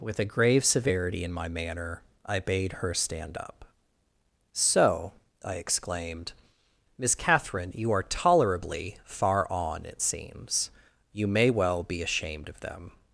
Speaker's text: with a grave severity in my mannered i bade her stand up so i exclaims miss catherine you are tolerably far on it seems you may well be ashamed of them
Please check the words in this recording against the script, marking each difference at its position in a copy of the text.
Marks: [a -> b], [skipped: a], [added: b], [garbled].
with a grave severity in my [mannered -> manner] i bade her stand up so i [exclaims -> exclaimed] miss catherine you are tolerably far on it seems you may well be ashamed of them